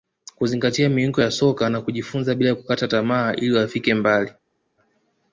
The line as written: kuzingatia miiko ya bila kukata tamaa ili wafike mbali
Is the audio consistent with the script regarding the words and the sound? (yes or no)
no